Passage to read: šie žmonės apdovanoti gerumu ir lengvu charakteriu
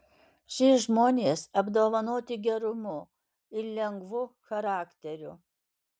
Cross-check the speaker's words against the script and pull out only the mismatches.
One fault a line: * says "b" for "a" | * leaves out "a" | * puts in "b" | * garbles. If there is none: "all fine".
all fine